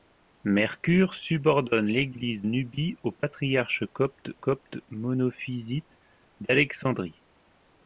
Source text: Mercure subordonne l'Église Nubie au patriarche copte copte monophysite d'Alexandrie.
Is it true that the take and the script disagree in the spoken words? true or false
false